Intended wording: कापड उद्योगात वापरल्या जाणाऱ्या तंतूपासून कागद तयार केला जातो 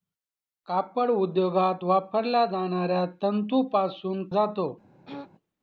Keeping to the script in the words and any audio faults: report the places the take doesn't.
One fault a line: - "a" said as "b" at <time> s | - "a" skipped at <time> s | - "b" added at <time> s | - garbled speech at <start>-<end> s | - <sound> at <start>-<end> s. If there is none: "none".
- "कागद तयार केला" skipped at 4.3 s
- throat clearing at 5.1-5.3 s